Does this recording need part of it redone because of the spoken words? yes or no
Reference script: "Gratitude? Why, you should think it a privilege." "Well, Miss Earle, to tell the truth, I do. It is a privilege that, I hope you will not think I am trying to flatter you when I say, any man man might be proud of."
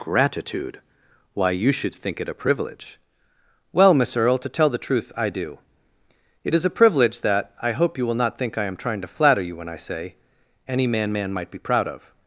no